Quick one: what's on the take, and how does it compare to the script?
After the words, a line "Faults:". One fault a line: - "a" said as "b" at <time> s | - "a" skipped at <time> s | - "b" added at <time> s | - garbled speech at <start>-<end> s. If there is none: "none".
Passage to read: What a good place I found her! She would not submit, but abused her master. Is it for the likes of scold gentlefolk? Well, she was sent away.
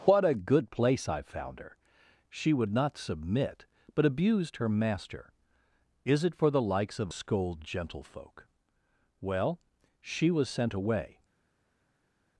What a good place I found her! She would not submit, but abused her master. Is it for the likes of scold gentlefolk? Well, she was sent away.
Faults:
none